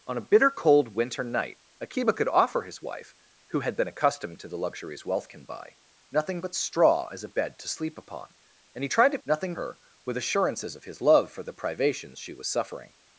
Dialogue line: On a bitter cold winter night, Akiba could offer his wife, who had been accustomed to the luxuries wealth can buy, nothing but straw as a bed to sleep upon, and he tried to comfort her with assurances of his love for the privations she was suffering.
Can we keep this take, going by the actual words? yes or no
no